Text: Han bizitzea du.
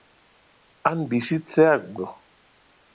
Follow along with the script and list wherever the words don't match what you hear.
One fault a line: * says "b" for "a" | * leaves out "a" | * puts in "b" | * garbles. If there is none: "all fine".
all fine